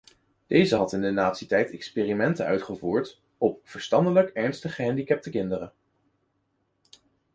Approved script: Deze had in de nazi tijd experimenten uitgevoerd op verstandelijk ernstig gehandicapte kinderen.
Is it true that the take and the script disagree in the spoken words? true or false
false